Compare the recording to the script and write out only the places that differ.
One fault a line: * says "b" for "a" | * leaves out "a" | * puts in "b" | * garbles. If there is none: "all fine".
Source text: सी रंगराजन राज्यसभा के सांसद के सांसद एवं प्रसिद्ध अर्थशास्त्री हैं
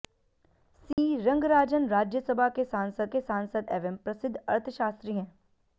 all fine